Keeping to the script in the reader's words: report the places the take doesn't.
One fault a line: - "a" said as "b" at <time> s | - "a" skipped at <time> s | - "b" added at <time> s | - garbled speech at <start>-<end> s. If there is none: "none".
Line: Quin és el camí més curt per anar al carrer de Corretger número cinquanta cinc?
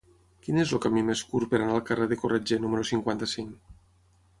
none